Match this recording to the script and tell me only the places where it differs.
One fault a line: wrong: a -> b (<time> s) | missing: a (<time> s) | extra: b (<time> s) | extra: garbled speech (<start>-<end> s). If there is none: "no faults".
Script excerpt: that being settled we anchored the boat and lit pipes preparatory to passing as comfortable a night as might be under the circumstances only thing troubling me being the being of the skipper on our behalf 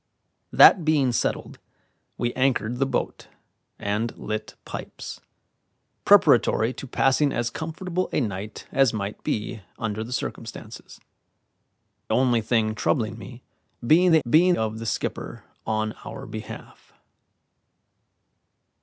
no faults